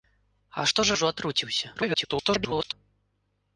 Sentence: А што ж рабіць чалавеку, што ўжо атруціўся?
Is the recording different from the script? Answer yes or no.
yes